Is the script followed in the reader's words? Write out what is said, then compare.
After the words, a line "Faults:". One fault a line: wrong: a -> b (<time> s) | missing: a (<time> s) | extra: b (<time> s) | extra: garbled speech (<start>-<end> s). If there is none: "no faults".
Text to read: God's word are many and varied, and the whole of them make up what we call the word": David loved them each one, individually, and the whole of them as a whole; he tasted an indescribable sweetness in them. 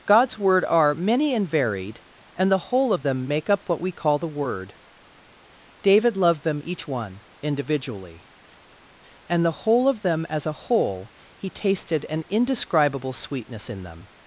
God's word are many and varied, and the whole of them make up what we call the word": David loved them each one, individually, and the whole of them as a whole; he tasted an indescribable sweetness in them.
Faults:
no faults